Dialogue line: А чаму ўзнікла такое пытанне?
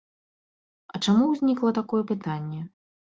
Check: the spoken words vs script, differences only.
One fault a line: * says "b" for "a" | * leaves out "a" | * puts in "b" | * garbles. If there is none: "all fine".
all fine